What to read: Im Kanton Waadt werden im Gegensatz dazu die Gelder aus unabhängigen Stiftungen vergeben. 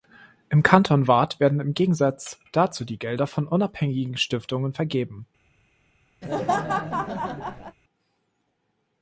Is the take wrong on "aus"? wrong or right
wrong